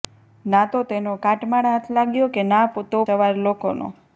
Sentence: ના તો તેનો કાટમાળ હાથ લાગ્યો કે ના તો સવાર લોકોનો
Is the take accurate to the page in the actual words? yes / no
yes